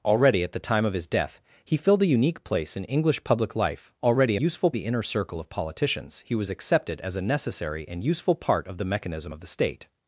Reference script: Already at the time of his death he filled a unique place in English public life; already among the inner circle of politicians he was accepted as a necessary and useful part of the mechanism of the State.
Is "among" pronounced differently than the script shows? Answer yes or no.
yes